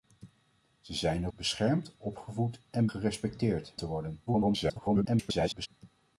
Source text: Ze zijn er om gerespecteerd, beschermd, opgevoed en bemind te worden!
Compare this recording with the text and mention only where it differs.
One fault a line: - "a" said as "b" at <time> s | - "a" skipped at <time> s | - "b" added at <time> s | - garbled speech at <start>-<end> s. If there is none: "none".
- "om gerespecteerd" skipped at 1.3 s
- "bemind" said as "gerespecteerd" at 2.9 s
- garbled speech at 4.3-5.7 s